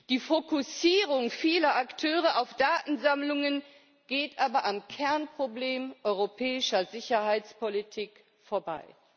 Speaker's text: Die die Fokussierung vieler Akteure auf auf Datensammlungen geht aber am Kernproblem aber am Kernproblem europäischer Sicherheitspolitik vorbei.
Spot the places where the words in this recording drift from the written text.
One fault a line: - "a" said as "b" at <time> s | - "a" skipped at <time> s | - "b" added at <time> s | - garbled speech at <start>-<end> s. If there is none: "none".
- "die" skipped at 0.2 s
- "auf" skipped at 2.5 s
- "aber am Kernproblem" skipped at 5.9 s